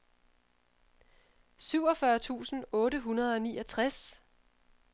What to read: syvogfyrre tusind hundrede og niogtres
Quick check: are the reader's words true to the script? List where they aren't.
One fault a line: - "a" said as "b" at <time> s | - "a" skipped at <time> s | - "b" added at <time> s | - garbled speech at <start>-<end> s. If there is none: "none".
- "otte" added at 2.7 s